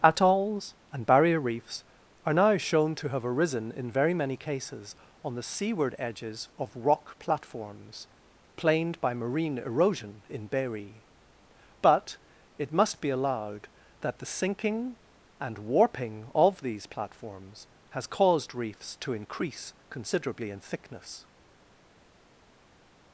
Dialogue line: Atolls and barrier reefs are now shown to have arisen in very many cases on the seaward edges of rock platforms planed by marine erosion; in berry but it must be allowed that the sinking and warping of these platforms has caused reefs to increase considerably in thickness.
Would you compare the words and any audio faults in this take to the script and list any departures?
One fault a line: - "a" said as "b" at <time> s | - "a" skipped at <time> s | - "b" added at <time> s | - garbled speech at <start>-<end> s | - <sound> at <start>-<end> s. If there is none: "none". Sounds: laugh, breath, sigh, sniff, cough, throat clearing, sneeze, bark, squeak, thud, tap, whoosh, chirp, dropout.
none